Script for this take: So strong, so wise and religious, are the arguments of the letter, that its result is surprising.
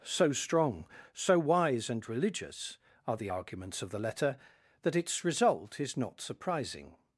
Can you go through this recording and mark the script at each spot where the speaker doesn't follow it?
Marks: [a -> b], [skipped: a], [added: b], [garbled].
So strong, so wise and religious, are the arguments of the letter, that its result is [added: not] surprising.